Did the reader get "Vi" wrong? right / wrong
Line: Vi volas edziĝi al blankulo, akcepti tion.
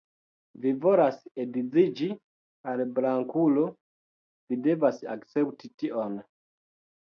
right